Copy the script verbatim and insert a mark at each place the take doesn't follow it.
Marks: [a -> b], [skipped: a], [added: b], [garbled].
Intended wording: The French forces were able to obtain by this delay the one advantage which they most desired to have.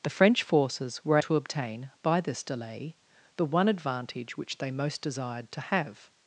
The French forces were [skipped: able] to obtain by this delay the one advantage which they most desired to have.